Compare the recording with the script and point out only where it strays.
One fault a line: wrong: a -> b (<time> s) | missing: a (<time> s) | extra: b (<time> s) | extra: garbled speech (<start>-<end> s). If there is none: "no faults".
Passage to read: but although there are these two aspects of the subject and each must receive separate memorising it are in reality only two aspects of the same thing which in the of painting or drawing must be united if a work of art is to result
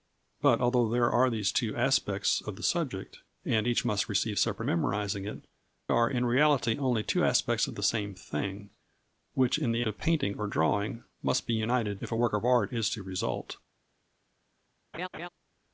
no faults